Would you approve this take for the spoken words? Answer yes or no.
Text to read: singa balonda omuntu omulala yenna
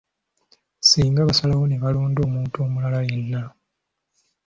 no